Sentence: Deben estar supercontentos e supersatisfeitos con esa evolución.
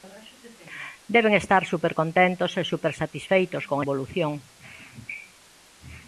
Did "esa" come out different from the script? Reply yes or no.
yes